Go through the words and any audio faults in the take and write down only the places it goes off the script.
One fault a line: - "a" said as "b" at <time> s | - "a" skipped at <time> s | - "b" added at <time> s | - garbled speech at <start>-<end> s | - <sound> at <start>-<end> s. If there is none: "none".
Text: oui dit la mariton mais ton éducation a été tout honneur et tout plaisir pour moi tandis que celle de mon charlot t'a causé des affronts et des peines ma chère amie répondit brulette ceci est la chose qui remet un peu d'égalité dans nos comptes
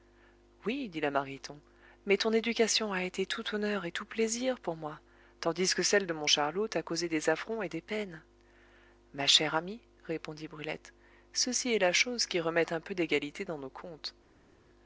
none